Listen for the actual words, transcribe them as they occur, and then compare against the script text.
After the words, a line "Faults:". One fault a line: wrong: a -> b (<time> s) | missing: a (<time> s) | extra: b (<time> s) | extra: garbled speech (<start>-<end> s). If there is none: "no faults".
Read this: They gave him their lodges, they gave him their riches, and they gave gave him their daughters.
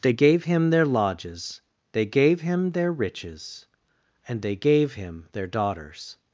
They gave him their lodges, they gave him their riches, and they gave him their daughters.
Faults:
missing: gave (4.9 s)